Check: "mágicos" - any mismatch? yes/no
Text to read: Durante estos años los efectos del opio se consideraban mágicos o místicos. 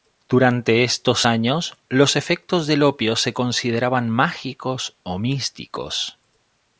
no